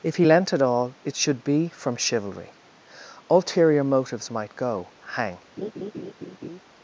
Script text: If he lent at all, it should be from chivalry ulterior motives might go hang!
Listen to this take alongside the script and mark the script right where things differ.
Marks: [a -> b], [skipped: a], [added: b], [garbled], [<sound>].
If he lent at all, it should be from chivalry ulterior motives might go hang! [laugh]